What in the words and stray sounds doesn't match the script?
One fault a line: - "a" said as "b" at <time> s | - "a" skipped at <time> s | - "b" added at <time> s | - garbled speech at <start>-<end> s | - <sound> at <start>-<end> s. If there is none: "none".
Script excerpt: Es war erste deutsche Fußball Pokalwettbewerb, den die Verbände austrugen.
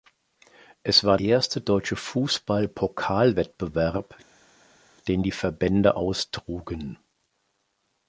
none